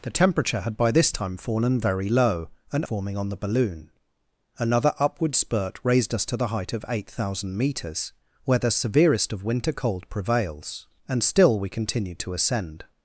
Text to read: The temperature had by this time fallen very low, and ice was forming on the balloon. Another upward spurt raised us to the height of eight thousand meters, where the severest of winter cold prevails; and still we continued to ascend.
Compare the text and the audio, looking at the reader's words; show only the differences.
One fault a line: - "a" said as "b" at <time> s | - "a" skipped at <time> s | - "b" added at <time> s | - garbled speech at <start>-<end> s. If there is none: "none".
- "ice was" skipped at 2.9 s